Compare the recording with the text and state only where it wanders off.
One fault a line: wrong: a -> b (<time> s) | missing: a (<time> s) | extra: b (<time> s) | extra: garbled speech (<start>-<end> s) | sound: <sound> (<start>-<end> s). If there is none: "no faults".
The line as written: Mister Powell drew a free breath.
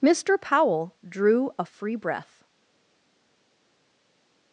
no faults